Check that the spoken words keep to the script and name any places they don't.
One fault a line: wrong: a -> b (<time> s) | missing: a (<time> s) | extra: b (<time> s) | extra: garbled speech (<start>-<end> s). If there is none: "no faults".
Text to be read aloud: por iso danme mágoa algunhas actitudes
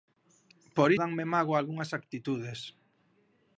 missing: iso (0.9 s)